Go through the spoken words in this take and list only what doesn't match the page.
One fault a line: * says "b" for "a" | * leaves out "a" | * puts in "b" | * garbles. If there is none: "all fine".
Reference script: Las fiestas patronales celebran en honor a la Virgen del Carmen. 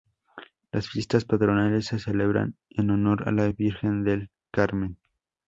* puts in "se"